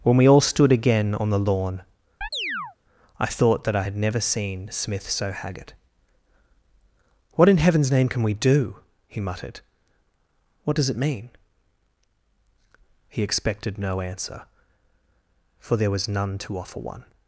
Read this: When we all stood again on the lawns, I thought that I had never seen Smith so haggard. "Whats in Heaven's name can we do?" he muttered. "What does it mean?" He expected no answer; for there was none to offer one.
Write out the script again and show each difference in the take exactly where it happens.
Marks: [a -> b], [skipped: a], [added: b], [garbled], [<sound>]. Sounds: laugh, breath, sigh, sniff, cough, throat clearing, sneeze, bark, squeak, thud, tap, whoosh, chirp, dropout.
When we all stood again on the [lawns, -> lawn] [chirp] I thought that I had never seen Smith so haggard. ["Whats -> What] in Heaven's name can we do?" he muttered. "What does it mean?" He expected no answer; for there was none to offer one.